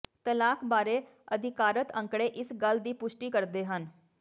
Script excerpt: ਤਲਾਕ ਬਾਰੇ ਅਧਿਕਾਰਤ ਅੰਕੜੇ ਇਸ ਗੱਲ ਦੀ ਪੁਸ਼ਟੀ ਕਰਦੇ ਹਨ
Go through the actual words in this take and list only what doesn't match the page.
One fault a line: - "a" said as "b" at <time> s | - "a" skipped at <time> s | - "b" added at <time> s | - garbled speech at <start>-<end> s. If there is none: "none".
none